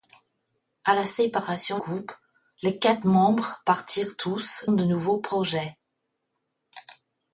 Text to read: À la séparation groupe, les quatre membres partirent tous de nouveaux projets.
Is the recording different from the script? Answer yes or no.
no